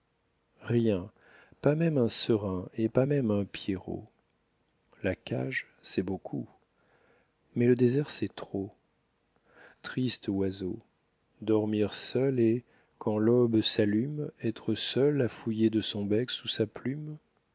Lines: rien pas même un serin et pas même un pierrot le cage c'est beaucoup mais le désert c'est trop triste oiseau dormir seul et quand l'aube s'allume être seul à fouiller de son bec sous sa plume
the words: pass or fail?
fail